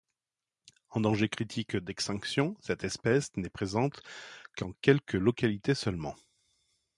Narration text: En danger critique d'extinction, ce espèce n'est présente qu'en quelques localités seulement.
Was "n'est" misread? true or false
false